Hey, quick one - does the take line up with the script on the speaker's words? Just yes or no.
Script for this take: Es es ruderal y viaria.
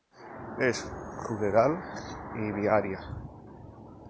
no